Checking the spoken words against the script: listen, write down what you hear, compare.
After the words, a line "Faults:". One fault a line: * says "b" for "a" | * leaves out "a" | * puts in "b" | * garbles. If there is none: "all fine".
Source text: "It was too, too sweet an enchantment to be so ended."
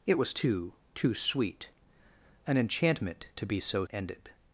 "It was too, too sweet an enchantment to be so ended."
Faults:
all fine